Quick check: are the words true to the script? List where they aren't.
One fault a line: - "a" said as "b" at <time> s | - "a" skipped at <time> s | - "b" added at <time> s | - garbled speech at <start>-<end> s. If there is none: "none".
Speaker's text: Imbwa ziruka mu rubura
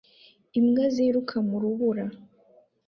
none